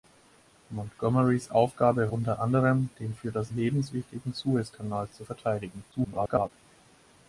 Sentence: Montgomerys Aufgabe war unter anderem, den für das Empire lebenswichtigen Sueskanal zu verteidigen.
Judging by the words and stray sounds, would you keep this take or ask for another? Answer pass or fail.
fail